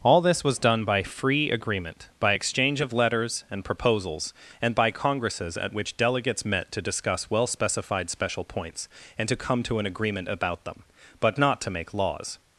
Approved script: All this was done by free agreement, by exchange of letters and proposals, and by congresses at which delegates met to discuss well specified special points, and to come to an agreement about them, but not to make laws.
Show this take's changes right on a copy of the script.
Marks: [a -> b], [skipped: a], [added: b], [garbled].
All this was done by free agreement, by exchange of letters and proposals, and by congresses at which delegates met to discuss well specified special points, and to come to an agreement about them, but not to make laws.